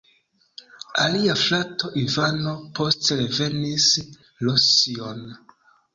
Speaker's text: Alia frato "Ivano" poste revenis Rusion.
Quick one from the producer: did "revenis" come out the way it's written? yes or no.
yes